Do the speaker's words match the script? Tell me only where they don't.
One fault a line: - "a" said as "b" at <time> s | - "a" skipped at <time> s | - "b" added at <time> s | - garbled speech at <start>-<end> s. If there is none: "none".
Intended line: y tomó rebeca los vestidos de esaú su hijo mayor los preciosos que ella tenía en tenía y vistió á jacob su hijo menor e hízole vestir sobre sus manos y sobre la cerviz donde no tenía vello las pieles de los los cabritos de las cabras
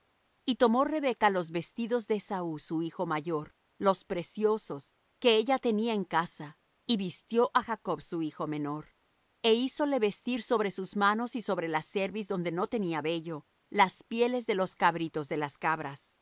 - "tenía" said as "casa" at 6.0 s
- "los" skipped at 14.7 s